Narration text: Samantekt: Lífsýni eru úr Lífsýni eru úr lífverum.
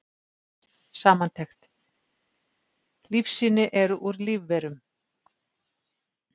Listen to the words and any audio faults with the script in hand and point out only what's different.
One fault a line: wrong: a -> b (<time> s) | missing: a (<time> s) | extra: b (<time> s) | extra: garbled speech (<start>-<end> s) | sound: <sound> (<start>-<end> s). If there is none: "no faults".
missing: Lífsýni eru úr (4.2 s)